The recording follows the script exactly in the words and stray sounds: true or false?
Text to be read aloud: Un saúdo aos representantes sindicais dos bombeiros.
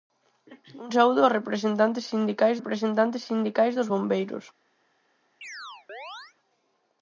false